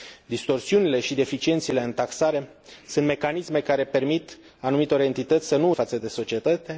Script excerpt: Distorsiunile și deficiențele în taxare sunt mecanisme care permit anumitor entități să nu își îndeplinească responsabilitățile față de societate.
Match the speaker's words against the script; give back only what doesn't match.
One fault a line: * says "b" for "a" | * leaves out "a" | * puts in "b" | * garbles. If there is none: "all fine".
* leaves out "își îndeplinească responsabilitățile"